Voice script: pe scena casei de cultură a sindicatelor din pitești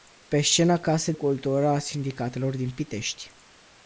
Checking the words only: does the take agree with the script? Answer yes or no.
no